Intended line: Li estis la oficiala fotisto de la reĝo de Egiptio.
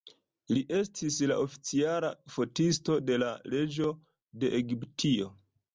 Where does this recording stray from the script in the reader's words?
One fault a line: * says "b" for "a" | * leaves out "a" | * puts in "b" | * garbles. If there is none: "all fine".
all fine